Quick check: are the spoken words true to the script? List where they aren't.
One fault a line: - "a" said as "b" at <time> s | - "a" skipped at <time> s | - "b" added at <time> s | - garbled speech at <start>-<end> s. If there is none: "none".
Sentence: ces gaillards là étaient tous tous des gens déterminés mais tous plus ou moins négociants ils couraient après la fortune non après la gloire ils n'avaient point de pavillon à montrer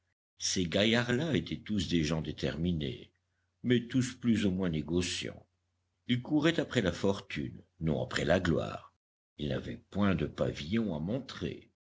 - "tous" skipped at 1.9 s